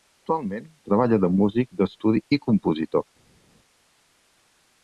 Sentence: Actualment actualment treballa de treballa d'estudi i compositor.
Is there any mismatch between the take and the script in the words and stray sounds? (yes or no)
yes